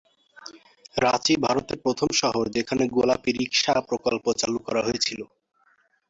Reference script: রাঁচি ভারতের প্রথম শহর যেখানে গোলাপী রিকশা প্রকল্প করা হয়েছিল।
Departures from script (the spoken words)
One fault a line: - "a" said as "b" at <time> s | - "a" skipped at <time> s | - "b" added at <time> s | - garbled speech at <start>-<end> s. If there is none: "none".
- "চালু" added at 4.4 s